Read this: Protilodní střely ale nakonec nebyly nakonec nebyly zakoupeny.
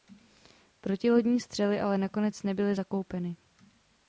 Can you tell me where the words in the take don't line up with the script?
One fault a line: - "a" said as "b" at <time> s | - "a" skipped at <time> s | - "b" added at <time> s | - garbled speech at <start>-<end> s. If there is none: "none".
- "nakonec nebyly" skipped at 2.8 s